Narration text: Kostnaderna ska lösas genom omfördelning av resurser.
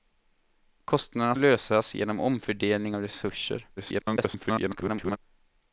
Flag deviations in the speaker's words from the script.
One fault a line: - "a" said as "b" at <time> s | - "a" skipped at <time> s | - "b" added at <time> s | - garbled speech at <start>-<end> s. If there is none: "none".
- "ska" skipped at 1.4 s
- garbled speech at 3.8-5.2 s